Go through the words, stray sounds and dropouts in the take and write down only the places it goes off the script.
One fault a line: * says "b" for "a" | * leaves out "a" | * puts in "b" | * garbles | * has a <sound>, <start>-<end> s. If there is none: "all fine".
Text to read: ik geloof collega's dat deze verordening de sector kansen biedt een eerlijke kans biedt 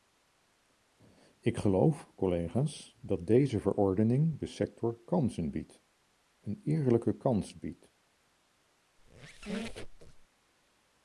* has a squeak, 9.0-10.3 s